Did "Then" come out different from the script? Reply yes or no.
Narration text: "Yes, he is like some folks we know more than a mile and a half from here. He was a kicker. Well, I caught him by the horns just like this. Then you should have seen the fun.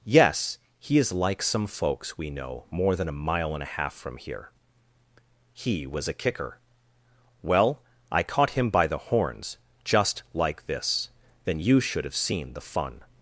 no